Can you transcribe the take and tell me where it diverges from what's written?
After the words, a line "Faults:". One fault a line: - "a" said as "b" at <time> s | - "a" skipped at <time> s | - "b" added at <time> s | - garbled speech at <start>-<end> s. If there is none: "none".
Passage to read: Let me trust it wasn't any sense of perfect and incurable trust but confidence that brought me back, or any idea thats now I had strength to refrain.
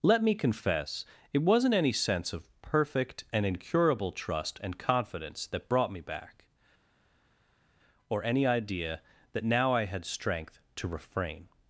Let me confess it wasn't any sense of perfect and incurable trust and confidence that brought me back, or any idea that now I had strength to refrain.
Faults:
- "trust" said as "confess" at 0.3 s
- "but" said as "and" at 4.6 s
- "thats" said as "that" at 9.3 s